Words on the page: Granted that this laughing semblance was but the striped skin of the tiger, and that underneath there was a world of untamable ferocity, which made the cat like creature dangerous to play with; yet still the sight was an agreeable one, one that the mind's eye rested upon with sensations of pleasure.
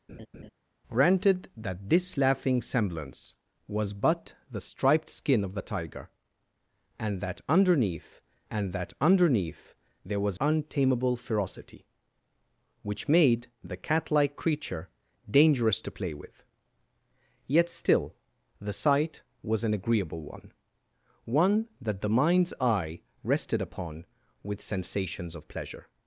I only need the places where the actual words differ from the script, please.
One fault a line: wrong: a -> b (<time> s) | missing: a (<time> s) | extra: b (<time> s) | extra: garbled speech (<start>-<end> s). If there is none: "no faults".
wrong: there was a world of -> and that underneath there was (8.5 s)